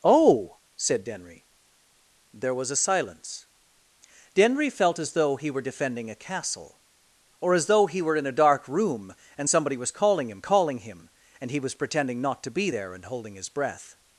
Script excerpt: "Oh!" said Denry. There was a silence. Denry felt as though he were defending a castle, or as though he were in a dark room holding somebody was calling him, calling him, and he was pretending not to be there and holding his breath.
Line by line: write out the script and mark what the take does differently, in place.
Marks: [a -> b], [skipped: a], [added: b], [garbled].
"Oh!" said Denry. There was a silence. Denry felt as though he were defending a castle, or as though he were in a dark room [holding -> and] somebody was calling him, calling him, and he was pretending not to be there and holding his breath.